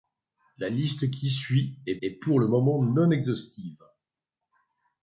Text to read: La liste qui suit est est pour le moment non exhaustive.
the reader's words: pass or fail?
pass